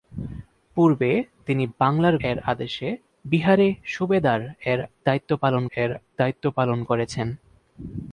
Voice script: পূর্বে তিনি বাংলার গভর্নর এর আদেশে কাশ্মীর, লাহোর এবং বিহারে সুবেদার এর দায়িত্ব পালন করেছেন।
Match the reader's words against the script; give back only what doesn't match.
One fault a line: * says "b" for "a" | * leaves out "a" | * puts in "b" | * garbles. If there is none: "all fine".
* leaves out "গভর্নর"
* says "বিহারে সুবেদার এর দায়িত্ব পালন" for "কাশ্মীর লাহোর এবং বিহারে সুবেদার"